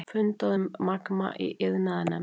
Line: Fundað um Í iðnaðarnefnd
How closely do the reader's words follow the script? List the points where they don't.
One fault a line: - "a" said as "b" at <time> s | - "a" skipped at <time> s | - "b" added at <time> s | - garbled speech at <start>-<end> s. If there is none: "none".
- "Magma" added at 0.9 s